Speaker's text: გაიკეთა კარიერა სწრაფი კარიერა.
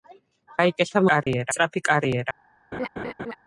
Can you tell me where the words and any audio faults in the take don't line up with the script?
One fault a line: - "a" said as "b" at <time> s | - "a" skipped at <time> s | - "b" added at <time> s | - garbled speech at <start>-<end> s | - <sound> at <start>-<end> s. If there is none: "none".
- dropout at 1.2-1.3 s
- laugh at 2.7-3.4 s